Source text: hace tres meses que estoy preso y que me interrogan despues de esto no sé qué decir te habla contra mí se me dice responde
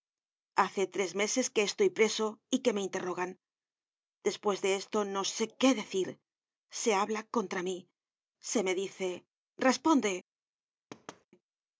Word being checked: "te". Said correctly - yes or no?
no